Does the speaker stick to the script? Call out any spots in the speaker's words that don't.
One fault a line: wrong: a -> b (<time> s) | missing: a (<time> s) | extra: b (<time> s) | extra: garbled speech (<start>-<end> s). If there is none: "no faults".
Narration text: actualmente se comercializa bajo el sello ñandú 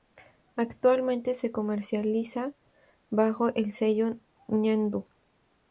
no faults